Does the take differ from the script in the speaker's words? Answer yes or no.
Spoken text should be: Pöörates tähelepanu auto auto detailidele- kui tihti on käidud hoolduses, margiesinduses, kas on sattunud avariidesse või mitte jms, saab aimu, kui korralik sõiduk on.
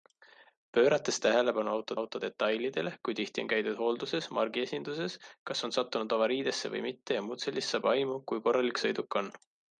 no